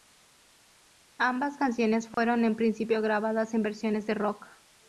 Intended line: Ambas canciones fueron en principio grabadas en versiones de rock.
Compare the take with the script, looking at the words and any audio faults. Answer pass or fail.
fail